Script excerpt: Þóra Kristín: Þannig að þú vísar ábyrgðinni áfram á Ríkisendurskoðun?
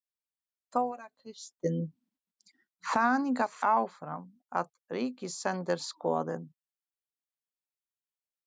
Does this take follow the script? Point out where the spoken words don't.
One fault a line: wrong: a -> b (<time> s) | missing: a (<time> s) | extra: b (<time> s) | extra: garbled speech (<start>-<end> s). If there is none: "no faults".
missing: þú vísar ábyrgðinni (3.6 s)